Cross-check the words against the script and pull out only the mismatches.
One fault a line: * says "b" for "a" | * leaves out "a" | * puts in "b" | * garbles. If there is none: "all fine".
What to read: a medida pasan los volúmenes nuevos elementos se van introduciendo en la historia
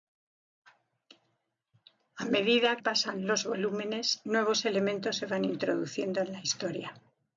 all fine